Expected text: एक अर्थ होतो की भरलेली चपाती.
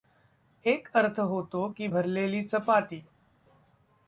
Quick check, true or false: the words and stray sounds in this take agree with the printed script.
true